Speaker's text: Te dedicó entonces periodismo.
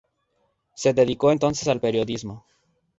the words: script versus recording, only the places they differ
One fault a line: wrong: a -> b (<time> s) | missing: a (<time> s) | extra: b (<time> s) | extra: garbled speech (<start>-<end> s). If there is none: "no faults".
wrong: Te -> Se (0.7 s)
extra: al (1.7 s)